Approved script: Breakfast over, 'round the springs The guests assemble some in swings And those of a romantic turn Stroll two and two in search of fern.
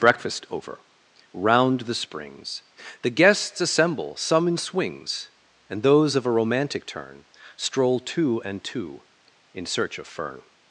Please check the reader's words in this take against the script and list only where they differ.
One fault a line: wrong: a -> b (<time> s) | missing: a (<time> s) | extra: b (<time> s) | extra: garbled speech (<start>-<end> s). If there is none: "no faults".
no faults